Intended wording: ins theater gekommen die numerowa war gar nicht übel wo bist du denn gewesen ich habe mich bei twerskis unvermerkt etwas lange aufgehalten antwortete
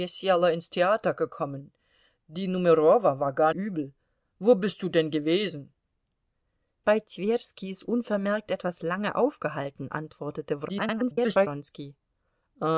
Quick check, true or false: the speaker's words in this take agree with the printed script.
false